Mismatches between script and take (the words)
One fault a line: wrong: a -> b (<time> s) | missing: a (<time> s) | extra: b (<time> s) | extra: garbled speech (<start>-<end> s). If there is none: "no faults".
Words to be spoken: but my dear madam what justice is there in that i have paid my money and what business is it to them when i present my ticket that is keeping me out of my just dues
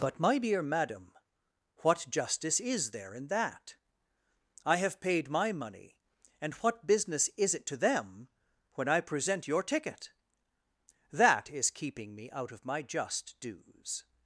wrong: my -> your (9.5 s)